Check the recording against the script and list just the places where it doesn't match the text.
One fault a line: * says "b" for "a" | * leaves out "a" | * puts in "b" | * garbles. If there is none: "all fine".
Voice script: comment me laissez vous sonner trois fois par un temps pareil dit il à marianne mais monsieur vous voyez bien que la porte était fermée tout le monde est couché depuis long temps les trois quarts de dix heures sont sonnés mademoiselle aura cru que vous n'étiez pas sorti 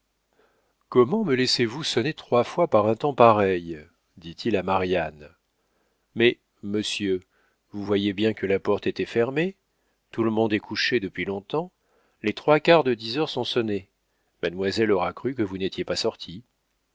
all fine